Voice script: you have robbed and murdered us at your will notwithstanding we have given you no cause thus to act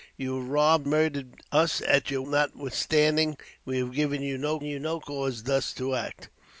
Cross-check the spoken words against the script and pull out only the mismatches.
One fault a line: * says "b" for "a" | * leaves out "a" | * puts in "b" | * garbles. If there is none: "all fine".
* leaves out "and"
* leaves out "will"
* puts in "you no"